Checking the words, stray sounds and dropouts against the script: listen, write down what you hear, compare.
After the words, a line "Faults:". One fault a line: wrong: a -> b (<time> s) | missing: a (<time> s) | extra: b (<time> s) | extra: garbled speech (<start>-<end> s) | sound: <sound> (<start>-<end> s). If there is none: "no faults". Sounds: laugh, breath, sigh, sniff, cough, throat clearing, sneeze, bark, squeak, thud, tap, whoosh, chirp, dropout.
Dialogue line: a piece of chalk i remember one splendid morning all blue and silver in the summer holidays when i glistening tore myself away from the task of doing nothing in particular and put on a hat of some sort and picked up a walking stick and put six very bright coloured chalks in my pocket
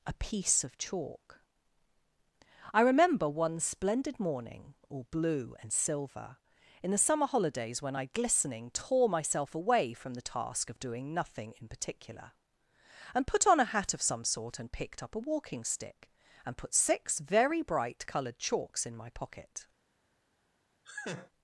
a piece of chalk i remember one splendid morning all blue and silver in the summer holidays when i glistening tore myself away from the task of doing nothing in particular and put on a hat of some sort and picked up a walking stick and put six very bright coloured chalks in my pocket
Faults:
sound: laugh (20.8-21.3 s)